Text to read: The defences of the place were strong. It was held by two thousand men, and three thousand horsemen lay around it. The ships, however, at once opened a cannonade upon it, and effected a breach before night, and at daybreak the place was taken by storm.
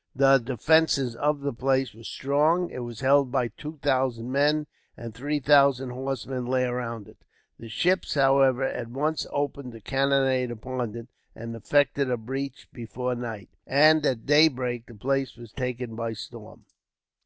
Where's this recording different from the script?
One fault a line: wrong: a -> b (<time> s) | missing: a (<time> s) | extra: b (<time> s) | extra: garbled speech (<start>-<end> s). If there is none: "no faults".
no faults